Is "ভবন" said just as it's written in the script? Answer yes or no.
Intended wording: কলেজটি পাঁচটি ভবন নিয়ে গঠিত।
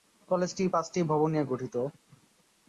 yes